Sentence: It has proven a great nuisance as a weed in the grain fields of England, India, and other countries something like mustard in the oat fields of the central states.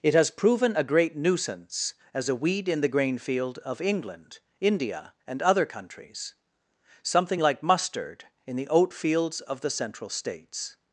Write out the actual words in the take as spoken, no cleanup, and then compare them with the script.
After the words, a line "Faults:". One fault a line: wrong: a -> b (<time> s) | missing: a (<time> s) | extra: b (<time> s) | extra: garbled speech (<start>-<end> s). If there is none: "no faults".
It has proven a great nuisance as a weed in the grain field of England, India, and other countries something like mustard in the oat fields of the central states.
Faults:
wrong: fields -> field (3.2 s)